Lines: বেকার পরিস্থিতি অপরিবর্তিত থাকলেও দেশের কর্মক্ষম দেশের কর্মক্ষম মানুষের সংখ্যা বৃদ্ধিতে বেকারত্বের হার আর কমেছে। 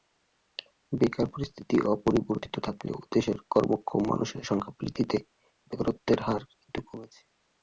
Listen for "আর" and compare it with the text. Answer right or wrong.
wrong